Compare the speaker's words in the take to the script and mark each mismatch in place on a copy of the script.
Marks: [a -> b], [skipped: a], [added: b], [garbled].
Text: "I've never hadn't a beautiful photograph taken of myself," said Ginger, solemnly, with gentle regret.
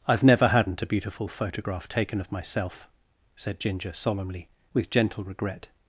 "I've never hadn't a beautiful photograph taken of myself," said Ginger, solemnly, with gentle regret.